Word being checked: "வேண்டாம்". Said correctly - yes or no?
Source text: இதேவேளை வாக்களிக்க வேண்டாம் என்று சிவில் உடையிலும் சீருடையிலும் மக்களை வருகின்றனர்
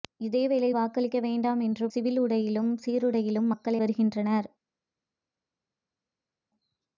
yes